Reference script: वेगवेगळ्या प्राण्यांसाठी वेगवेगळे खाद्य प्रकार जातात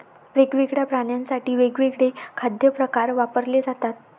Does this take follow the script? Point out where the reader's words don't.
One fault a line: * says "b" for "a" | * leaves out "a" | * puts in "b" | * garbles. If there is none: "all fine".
* puts in "वापरले"